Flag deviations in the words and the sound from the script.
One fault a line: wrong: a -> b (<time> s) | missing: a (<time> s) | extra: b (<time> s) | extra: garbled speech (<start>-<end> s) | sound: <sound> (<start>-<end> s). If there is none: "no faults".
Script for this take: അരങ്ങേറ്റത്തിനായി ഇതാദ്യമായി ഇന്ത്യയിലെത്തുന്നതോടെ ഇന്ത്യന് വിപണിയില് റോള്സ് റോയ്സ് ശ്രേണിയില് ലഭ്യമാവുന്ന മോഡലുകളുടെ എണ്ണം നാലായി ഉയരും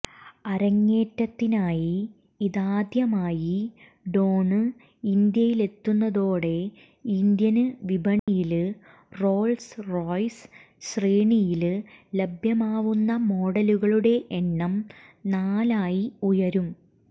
extra: ഡോണ് (4.1 s)
sound: dropout (8.2-8.3 s)